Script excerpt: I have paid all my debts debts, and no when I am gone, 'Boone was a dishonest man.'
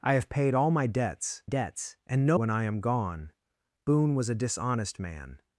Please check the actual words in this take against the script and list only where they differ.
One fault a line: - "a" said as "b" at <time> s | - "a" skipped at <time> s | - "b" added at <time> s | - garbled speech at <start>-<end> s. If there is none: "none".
none